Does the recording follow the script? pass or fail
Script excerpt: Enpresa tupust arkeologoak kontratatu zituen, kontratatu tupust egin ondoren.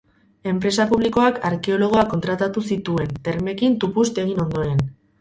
fail